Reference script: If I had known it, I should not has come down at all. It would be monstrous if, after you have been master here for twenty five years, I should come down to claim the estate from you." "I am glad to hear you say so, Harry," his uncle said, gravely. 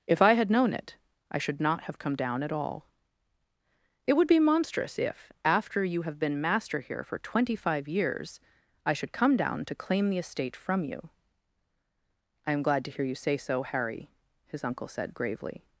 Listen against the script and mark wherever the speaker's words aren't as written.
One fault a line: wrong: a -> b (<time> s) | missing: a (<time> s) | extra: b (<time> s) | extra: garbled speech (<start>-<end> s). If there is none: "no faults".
wrong: has -> have (1.8 s)